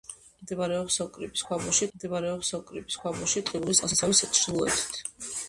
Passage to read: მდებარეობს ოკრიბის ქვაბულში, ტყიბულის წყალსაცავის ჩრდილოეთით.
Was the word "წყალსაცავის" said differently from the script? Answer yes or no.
no